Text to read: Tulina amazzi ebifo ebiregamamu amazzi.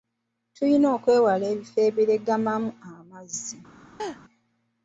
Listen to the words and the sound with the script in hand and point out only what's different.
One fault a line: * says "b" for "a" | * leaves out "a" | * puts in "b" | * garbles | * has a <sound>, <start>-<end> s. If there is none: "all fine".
* says "okwewala" for "amazzi"
* has a laugh, 4.0-4.2 s